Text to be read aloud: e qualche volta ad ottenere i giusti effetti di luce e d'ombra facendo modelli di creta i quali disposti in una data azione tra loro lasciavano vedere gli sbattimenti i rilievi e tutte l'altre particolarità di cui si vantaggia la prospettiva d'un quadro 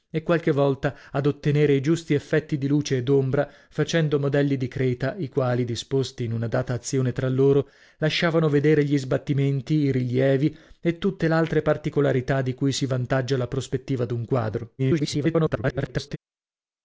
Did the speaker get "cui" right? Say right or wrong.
right